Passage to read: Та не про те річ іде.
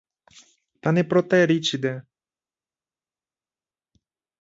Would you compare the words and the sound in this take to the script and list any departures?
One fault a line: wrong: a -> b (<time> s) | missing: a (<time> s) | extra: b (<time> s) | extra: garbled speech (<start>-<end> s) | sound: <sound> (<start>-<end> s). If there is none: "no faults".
no faults